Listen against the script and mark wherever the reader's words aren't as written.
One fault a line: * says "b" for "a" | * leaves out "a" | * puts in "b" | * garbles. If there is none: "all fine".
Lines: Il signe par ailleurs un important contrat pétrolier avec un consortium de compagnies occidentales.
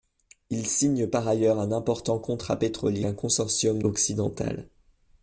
* leaves out "avec"
* leaves out "de compagnies"